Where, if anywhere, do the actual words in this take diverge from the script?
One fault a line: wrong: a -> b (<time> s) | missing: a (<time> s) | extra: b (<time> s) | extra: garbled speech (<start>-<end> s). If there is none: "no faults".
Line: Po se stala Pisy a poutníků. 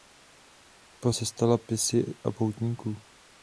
no faults